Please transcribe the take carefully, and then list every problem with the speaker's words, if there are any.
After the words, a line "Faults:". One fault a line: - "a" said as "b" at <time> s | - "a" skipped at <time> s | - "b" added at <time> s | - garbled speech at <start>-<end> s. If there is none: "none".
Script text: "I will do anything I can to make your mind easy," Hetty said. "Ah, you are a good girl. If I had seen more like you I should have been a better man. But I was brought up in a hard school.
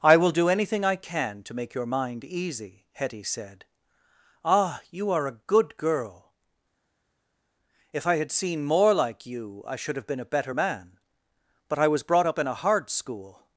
"I will do anything I can to make your mind easy," Hetty said. "Ah, you are a good girl. If I had seen more like you I should have been a better man. But I was brought up in a hard school.
Faults:
none